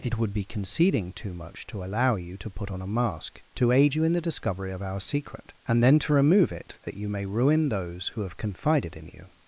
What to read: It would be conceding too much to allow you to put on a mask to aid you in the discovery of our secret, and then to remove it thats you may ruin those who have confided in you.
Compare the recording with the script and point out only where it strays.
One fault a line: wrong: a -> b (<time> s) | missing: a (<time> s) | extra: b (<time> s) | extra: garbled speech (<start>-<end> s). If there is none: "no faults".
wrong: thats -> that (6.8 s)